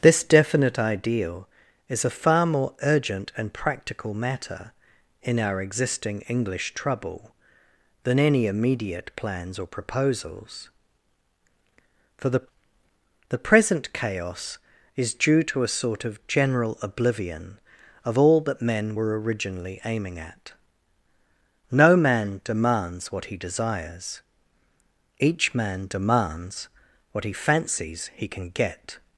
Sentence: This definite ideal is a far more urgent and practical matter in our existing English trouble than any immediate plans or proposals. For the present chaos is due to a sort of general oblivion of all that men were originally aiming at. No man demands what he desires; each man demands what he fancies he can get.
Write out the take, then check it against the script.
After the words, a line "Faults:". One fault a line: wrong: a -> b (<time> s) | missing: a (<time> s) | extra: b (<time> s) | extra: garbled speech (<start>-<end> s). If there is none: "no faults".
This definite ideal is a far more urgent and practical matter in our existing English trouble than any immediate plans or proposals. For the the present chaos is due to a sort of general oblivion of all that men were originally aiming at. No man demands what he desires; each man demands what he fancies he can get.
Faults:
extra: the (13.3 s)